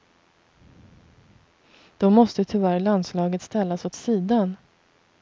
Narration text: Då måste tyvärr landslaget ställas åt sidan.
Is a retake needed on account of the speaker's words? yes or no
no